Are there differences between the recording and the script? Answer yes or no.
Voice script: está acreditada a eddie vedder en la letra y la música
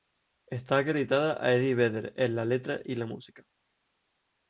no